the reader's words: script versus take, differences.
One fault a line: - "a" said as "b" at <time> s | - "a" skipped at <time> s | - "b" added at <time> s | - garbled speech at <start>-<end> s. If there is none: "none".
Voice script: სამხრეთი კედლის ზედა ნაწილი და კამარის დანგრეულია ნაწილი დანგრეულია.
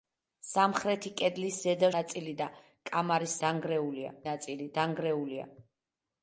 none